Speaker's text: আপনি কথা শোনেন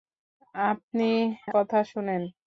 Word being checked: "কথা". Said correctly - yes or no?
yes